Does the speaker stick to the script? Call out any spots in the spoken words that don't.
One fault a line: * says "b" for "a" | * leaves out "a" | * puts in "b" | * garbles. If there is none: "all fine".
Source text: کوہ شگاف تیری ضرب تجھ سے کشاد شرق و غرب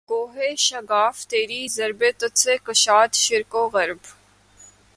all fine